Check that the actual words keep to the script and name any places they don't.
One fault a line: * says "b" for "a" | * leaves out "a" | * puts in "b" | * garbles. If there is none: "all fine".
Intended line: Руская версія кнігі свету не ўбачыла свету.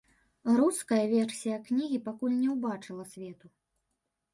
* says "пакуль" for "свету"